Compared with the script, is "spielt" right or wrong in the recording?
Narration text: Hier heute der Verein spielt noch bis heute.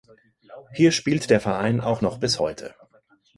wrong